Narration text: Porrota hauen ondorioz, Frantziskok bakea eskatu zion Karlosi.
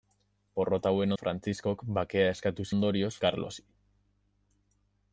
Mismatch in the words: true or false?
true